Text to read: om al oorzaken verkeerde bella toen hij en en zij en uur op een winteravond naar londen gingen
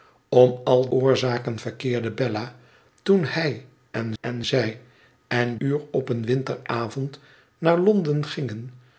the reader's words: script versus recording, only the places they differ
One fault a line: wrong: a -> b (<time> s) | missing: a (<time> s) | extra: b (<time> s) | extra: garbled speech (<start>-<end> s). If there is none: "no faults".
no faults